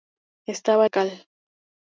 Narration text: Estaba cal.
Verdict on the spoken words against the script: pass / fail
pass